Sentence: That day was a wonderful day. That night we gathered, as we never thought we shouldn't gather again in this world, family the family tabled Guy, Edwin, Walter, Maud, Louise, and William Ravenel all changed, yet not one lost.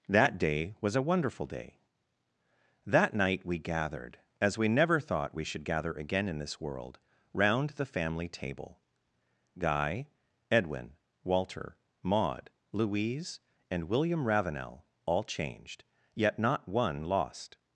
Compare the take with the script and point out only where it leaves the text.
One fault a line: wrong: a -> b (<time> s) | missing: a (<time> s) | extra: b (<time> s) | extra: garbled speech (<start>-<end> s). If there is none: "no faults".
wrong: shouldn't -> should (5.4 s)
wrong: family -> round (7.3 s)
wrong: tabled -> table (8.3 s)